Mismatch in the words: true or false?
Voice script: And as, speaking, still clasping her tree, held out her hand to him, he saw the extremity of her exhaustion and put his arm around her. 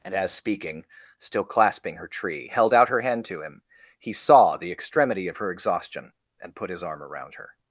false